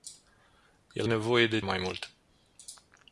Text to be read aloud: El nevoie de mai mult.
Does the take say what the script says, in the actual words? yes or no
yes